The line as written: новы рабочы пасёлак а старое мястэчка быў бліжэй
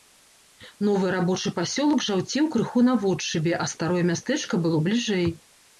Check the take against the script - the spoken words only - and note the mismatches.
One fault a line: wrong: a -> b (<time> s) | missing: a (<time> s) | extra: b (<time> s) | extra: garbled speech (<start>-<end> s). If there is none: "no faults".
extra: жаўцеў крыху наводшыбе (2.1 s)
wrong: быў -> было (4.7 s)